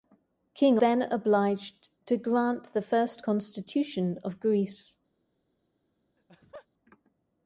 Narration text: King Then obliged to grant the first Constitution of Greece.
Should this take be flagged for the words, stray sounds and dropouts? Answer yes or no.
yes